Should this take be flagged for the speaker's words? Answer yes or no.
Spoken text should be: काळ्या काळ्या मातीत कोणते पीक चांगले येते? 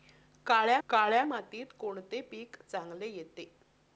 no